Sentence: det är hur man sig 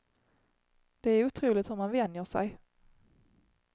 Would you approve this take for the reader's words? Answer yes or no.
no